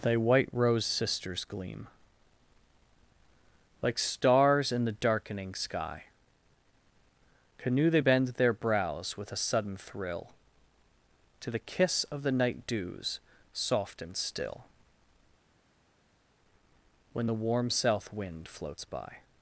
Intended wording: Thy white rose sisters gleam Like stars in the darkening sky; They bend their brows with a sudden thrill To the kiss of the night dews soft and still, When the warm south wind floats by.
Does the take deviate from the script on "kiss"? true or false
false